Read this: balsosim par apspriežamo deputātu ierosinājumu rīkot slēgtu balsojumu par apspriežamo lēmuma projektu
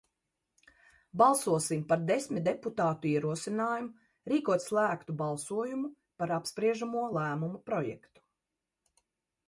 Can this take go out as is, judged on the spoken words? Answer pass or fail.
fail